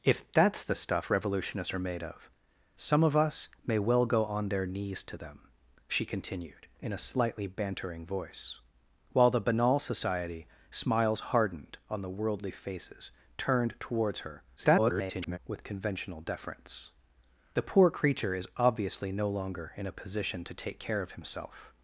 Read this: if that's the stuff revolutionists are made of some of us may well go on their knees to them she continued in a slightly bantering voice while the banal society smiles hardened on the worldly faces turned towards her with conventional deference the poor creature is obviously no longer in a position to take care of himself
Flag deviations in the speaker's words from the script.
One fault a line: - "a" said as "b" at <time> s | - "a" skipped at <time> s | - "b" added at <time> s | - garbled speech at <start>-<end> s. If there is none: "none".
- garbled speech at 14.6-15.4 s